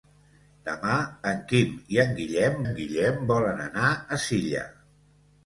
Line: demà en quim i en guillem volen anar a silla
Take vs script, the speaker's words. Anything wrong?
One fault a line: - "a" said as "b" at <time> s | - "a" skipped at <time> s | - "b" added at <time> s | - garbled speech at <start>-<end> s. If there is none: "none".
- "en guillem" added at 2.6 s